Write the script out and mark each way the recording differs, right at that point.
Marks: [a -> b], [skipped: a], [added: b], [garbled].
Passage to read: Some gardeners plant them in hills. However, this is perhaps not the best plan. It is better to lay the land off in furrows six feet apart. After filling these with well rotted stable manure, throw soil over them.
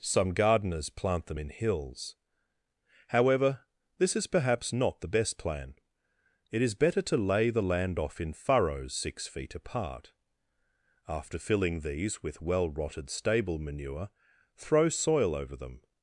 Some gardeners plant them in hills. However, this is perhaps not the best plan. It is better to lay the land off in furrows six feet apart. After filling these with well rotted stable manure, throw soil over them.